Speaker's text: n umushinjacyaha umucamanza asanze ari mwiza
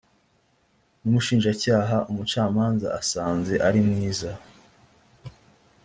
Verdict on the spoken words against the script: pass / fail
pass